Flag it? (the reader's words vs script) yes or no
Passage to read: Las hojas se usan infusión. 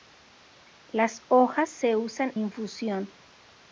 no